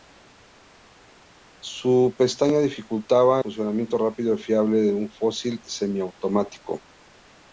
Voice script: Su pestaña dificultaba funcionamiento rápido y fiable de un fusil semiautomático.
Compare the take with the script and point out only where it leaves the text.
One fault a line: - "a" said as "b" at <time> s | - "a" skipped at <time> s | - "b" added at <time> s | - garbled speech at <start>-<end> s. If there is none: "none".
none